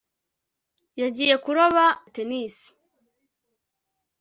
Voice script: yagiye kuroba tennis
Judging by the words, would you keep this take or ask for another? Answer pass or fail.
pass